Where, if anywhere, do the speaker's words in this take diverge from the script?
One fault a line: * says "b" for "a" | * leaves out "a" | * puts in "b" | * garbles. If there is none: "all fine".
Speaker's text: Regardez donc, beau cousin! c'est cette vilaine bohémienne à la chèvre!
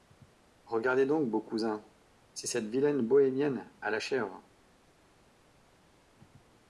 all fine